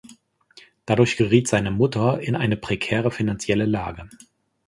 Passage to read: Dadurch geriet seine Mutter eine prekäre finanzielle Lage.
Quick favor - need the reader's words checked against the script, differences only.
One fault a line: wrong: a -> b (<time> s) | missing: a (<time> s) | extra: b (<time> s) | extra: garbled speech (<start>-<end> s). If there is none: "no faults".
extra: in (2.2 s)